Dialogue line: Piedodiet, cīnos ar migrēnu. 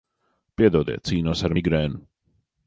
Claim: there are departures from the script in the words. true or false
false